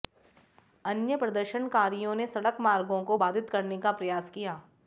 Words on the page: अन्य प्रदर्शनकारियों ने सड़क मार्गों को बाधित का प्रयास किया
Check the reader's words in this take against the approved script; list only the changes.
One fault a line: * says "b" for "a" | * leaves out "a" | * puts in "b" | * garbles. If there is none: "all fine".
* puts in "करने"